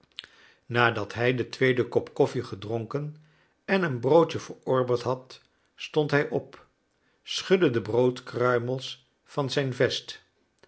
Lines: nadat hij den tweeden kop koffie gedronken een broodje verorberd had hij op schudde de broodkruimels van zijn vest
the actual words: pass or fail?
fail